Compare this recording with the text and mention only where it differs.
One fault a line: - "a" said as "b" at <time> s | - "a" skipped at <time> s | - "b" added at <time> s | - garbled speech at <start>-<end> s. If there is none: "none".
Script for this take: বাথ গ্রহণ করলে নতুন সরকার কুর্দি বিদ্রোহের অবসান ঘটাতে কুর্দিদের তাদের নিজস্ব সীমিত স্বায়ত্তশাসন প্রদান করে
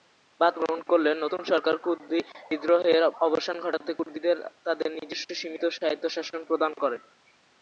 none